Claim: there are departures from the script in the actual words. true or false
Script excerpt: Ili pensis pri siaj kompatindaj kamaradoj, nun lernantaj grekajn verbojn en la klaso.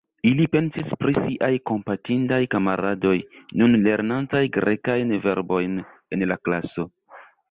false